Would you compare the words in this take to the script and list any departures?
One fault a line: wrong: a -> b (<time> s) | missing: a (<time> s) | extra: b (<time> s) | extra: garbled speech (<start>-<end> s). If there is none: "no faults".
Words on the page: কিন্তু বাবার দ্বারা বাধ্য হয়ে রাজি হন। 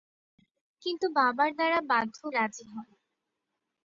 missing: হয়ে (2.2 s)